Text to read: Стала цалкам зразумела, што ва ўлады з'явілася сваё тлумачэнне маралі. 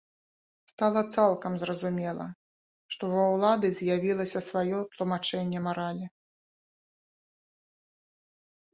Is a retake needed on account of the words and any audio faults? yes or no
no